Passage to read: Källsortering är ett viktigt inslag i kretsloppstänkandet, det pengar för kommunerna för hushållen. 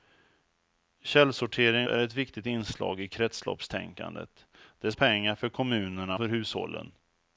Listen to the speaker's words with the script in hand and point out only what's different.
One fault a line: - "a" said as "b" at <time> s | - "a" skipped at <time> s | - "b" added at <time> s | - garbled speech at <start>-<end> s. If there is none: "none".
none